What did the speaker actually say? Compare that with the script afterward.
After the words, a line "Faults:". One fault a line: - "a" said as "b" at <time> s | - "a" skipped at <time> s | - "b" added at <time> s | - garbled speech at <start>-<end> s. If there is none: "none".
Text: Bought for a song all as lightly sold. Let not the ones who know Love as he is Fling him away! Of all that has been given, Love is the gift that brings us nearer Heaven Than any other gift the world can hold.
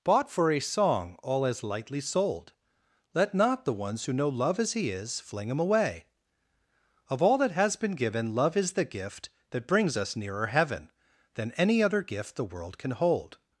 Bought for a song all as lightly sold. Let not the ones who know Love as he is Fling him away! Of all that has been given, Love is the gift that brings us nearer Heaven Than any other gift the world can hold.
Faults:
none